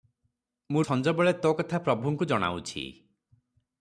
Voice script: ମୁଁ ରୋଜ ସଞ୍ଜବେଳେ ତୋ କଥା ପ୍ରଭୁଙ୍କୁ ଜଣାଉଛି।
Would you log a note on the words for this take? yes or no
yes